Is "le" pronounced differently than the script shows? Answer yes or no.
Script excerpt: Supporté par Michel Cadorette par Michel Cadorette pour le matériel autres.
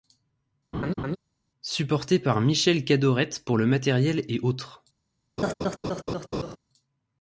no